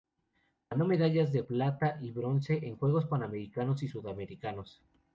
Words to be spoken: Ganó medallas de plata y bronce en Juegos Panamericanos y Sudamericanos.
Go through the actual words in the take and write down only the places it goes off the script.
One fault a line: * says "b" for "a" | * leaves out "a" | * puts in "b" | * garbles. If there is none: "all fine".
all fine